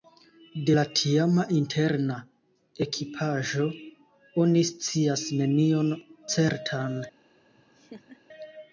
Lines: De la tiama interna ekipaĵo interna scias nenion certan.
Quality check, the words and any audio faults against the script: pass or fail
fail